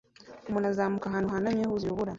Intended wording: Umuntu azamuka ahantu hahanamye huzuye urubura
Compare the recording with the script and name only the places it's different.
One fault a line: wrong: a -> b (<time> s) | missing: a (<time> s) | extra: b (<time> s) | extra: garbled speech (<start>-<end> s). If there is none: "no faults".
no faults